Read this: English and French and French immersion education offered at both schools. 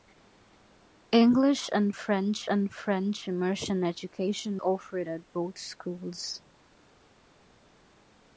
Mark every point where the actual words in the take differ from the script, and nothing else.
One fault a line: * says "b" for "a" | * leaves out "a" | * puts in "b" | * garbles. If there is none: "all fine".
all fine